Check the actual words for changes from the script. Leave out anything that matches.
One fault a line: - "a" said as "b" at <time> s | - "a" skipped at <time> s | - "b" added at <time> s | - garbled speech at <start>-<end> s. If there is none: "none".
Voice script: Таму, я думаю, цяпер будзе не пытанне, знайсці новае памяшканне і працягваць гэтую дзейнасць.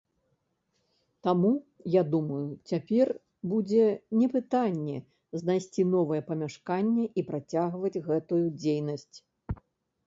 none